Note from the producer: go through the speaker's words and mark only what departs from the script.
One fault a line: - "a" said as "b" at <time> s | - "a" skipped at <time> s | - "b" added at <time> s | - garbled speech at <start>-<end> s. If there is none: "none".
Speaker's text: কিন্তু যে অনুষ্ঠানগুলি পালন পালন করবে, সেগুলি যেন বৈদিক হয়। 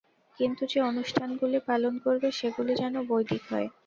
- "পালন" skipped at 1.9 s